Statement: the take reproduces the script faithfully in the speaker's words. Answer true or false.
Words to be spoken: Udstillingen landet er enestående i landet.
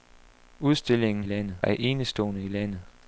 true